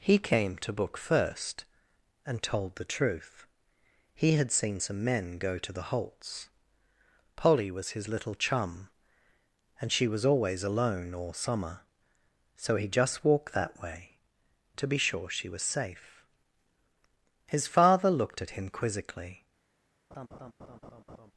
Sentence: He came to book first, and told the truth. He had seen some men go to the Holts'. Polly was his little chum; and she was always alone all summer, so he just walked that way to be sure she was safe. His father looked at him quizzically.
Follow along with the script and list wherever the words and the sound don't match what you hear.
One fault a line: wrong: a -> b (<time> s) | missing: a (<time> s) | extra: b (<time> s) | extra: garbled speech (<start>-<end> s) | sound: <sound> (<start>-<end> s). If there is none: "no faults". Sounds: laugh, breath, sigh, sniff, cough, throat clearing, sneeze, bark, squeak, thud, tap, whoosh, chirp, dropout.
sound: laugh (20.1-21.3 s)